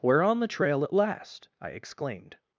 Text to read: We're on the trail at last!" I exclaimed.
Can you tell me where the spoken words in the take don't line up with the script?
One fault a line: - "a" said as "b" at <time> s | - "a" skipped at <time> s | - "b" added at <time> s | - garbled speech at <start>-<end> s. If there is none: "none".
none